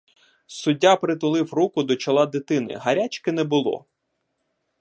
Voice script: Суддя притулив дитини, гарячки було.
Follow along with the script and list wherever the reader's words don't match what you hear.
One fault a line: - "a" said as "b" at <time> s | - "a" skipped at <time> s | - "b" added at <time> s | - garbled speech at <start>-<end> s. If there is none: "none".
- "руку до чола" added at 1.5 s
- "не" added at 3.3 s